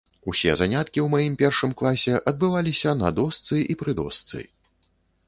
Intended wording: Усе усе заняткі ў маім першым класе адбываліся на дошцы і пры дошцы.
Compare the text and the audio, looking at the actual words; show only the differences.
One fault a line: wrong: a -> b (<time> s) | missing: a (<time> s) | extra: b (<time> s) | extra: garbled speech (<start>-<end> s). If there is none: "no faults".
missing: усе (0.5 s)